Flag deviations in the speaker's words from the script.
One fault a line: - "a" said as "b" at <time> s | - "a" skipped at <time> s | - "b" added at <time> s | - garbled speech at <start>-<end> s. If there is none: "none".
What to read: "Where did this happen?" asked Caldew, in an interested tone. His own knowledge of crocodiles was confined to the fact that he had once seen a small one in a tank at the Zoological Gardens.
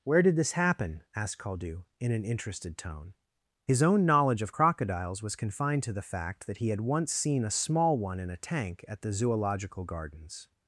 none